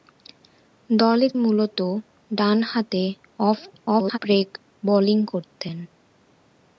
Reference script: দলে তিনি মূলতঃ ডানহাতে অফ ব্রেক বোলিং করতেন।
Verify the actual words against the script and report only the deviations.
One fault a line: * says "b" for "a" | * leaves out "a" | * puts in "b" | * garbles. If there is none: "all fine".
* leaves out "তিনি"
* garbles